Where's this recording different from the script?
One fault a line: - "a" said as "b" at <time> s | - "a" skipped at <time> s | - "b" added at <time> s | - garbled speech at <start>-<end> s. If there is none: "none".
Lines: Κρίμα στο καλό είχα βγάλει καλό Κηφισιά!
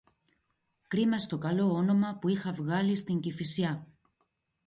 - "όνομα που" added at 1.7 s
- "καλό" said as "στην" at 3.0 s